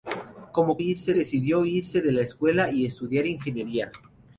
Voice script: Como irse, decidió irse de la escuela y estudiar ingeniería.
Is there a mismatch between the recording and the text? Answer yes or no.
no